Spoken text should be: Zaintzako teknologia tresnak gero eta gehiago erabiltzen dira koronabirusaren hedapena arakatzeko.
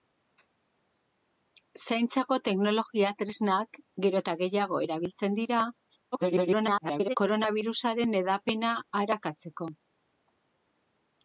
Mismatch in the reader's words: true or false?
true